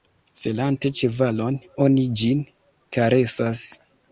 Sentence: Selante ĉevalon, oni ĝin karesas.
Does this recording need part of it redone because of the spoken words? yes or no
no